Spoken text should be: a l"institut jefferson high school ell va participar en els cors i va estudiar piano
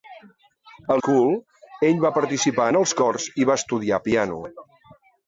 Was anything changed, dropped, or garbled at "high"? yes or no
yes